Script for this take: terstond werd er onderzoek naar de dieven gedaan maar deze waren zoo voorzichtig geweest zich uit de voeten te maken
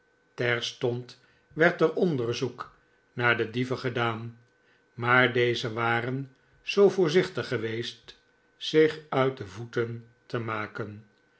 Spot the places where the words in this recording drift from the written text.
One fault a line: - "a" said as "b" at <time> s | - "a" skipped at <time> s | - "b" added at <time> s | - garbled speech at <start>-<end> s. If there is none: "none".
none